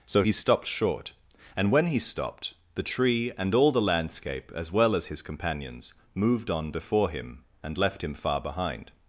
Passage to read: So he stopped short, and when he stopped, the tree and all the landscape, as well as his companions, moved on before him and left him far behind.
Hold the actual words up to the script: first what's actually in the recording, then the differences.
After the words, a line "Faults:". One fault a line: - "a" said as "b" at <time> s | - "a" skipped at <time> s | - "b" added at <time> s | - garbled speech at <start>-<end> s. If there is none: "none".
So he stopped short, and when he stopped, the tree and all the landscape, as well as his companions, moved on before him and left him far behind.
Faults:
none